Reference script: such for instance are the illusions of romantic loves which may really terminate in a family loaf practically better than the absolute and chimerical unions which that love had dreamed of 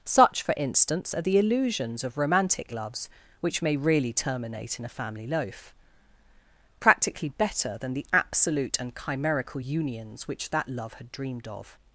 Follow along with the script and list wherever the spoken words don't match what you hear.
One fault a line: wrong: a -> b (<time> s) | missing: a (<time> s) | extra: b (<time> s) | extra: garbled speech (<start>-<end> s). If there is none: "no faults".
no faults